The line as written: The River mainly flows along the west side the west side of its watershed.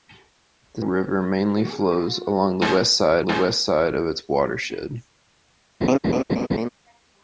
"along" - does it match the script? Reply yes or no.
yes